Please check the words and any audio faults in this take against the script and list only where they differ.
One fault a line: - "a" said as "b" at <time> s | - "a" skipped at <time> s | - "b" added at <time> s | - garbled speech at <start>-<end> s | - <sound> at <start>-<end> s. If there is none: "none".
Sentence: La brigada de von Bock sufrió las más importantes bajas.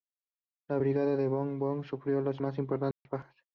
- dropout at 2.9-3.1 s